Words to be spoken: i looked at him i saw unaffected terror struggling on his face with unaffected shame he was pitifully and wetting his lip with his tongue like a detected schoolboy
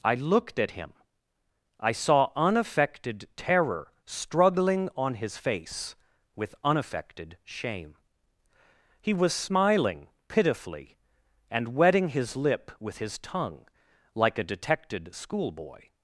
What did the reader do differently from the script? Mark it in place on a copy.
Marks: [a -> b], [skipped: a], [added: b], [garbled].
i looked at him i saw unaffected terror struggling on his face with unaffected shame he was [added: smiling] pitifully and wetting his lip with his tongue like a detected schoolboy